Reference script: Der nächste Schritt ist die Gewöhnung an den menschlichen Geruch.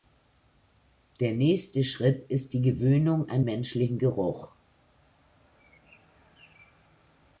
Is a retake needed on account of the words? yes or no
yes